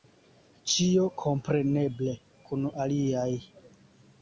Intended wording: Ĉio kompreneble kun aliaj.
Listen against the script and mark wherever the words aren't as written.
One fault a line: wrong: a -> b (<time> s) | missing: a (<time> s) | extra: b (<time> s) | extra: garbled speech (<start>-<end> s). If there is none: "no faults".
no faults